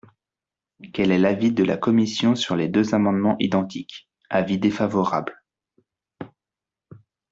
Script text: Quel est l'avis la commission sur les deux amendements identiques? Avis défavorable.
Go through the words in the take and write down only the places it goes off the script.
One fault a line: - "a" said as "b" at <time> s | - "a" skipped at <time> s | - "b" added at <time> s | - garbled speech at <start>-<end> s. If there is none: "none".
- "de" added at 1.5 s